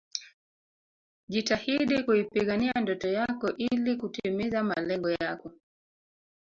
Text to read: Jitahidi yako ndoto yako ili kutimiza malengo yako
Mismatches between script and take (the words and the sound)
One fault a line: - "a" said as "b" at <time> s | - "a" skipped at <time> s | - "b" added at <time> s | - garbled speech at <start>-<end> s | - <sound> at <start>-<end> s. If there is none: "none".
- "yako" said as "kuipigania" at 2.0 s